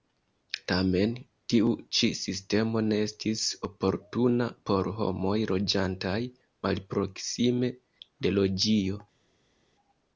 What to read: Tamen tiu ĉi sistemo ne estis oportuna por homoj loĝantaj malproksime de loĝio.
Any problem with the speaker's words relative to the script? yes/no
no